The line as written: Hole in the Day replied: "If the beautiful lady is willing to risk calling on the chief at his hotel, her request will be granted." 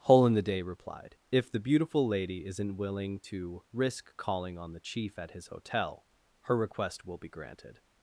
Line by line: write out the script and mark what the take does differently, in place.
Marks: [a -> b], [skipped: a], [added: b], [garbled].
Hole in the Day replied: "If the beautiful lady [is -> isn't] willing to risk calling on the chief at his hotel, her request will be granted."